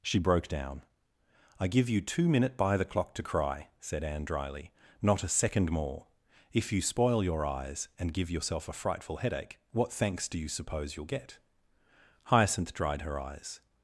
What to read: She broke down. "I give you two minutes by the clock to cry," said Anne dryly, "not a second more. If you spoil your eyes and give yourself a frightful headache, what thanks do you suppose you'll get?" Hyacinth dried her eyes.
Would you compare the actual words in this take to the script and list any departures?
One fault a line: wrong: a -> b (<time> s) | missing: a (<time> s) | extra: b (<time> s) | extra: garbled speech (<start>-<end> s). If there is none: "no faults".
wrong: minutes -> minute (2.3 s)